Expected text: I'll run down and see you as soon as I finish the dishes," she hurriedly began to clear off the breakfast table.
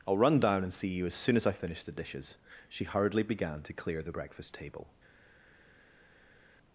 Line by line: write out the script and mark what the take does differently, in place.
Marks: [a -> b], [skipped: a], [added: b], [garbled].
I'll run down and see you as soon as I finish the dishes," she hurriedly began to clear [skipped: off] the breakfast table.